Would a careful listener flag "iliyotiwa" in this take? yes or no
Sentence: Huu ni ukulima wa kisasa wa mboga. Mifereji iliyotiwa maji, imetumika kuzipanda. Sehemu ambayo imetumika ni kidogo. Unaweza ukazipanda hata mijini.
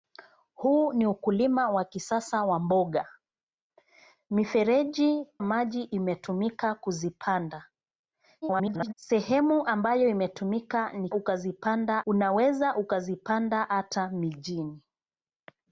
yes